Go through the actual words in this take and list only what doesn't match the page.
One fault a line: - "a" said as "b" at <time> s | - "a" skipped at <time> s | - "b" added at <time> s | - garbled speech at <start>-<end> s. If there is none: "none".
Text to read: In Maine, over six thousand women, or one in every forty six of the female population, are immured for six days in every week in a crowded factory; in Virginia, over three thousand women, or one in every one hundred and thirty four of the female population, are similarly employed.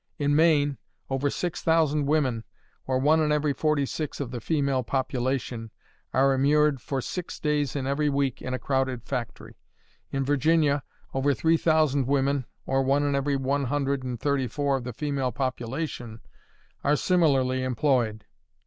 none